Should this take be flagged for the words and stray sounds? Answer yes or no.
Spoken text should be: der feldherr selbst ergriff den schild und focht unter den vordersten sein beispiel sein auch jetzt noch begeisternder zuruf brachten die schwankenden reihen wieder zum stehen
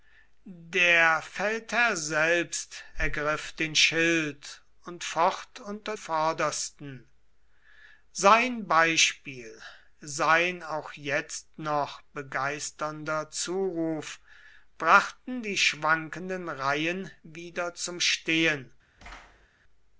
yes